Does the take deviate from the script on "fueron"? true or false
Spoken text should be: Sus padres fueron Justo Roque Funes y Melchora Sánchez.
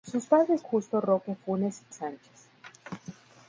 true